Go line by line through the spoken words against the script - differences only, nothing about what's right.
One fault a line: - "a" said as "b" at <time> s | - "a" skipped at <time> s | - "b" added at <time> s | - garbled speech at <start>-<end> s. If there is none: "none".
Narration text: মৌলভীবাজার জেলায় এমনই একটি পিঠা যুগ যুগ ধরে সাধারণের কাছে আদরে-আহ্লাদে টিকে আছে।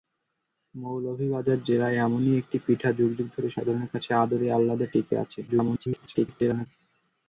- garbled speech at 5.5-6.7 s